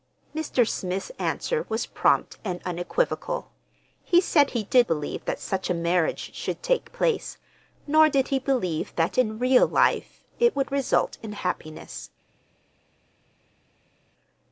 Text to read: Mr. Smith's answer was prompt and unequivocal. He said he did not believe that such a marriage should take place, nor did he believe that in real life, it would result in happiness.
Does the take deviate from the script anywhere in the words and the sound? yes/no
yes